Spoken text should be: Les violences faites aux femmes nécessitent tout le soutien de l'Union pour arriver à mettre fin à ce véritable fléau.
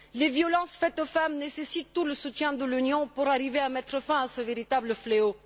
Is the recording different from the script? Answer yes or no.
no